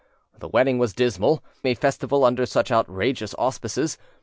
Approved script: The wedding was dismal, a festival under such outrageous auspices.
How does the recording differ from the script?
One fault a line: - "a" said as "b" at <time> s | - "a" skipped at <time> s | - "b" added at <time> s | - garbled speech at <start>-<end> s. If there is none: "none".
none